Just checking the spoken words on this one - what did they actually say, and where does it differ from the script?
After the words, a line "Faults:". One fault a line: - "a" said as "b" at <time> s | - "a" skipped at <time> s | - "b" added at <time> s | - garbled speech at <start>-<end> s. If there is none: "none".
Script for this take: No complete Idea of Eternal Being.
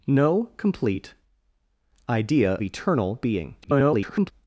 No complete Idea Eternal Being. [garbled]
Faults:
- "of" skipped at 2.5 s
- garbled speech at 3.6-4.3 s